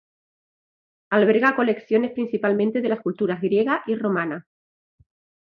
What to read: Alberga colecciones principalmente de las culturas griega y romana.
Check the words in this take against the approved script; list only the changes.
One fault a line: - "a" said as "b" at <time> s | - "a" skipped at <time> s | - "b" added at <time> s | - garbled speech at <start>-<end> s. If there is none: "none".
none